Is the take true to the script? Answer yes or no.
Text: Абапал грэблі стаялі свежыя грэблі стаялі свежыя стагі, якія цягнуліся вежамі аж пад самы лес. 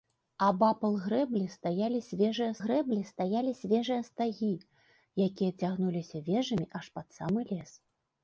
yes